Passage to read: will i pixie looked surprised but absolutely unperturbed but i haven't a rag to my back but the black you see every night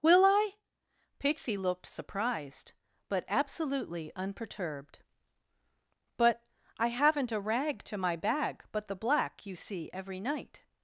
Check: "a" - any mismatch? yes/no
no